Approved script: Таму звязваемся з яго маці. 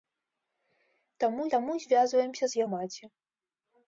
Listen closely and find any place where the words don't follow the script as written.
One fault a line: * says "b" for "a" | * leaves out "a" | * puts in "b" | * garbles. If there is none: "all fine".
* puts in "таму"
* leaves out "яго"